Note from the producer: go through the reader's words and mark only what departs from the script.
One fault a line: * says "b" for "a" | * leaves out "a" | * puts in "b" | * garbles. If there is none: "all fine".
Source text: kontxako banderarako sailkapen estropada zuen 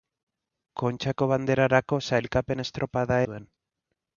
all fine